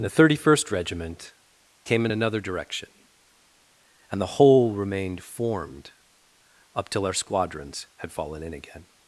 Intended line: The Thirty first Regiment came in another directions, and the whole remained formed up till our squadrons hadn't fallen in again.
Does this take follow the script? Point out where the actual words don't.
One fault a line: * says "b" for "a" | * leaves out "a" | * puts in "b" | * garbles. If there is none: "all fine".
* says "direction" for "directions"
* says "had" for "hadn't"